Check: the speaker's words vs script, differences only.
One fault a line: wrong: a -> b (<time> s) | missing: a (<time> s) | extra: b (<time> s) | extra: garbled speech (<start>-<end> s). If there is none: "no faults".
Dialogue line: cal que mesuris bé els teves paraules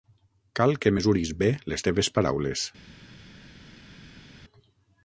wrong: els -> les (1.7 s)